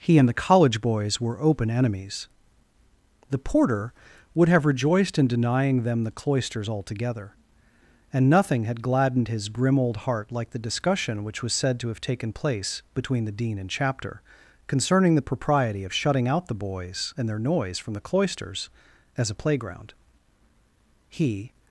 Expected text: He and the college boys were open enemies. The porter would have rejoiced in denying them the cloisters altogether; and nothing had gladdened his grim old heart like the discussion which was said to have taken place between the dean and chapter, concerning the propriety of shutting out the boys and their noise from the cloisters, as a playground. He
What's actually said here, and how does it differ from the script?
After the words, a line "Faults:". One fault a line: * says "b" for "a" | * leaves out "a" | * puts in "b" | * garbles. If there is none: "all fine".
He and the college boys were open enemies. The porter would have rejoiced in denying them the cloisters altogether; and nothing had gladdened his grim old heart like the discussion which was said to have taken place between the dean and chapter, concerning the propriety of shutting out the boys and their noise from the cloisters, as a playground. He
Faults:
all fine